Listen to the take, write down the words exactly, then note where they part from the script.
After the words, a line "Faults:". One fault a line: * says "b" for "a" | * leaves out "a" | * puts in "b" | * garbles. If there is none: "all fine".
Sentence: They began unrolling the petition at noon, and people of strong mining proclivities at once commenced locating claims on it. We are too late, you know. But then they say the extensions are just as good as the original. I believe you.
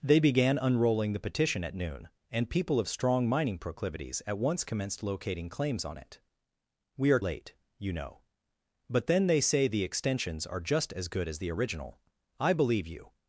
They began unrolling the petition at noon, and people of strong mining proclivities at once commenced locating claims on it. We are late, you know. But then they say the extensions are just as good as the original. I believe you.
Faults:
* leaves out "too"